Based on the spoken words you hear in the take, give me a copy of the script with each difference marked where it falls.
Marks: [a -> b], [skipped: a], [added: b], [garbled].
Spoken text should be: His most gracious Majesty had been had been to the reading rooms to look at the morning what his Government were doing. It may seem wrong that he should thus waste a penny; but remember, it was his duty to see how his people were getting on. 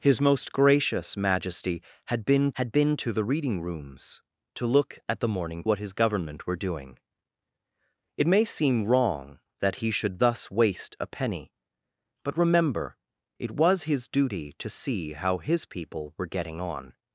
His most gracious Majesty had been had been to the reading rooms to look at the morning what his Government were doing. It may seem wrong that he should thus waste a penny; but remember, it was his duty to see how his people were getting on.